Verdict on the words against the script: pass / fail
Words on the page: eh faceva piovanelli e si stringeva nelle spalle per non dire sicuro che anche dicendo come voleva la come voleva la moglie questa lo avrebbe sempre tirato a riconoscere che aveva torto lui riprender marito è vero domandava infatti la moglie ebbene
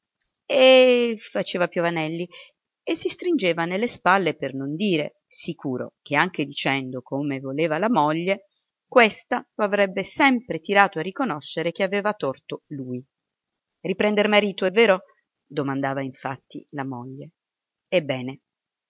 fail